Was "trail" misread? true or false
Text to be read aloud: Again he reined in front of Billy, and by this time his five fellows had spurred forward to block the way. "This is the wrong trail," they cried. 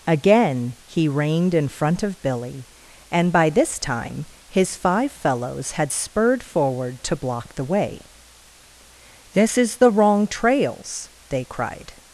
true